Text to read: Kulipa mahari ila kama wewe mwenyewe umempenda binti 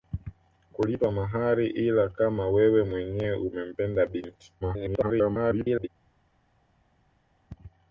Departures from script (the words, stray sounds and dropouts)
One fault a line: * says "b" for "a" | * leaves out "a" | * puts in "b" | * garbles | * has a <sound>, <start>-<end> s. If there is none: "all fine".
* garbles